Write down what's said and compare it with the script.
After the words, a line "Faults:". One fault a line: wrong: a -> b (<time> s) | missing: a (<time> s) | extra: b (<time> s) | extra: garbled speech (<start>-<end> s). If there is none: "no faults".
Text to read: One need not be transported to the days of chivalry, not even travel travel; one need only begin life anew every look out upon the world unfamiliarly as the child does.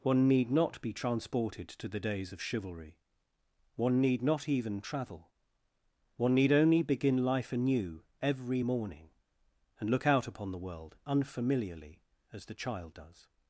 One need not be transported to the days of chivalry, one need not even travel; one need only begin life anew every morning, and look out upon the world unfamiliarly as the child does.
Faults:
extra: one need (3.8 s)
missing: travel (5.3 s)
extra: morning and (8.6 s)